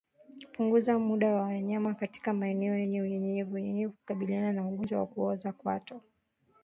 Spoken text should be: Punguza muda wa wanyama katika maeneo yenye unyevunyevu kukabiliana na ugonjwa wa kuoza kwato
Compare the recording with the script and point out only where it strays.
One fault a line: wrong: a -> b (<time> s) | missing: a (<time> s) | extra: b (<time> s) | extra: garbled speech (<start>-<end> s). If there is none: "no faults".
no faults